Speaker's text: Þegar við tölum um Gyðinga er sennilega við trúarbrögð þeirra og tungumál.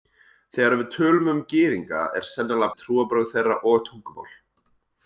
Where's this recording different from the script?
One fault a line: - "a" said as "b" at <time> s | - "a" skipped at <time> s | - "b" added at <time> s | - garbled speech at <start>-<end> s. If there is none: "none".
none